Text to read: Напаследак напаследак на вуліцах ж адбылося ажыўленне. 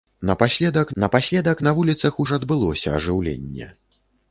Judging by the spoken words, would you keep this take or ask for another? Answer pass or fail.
pass